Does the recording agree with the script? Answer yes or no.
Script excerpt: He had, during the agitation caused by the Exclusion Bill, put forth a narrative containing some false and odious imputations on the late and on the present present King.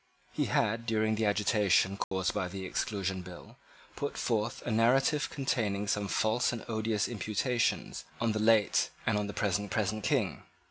yes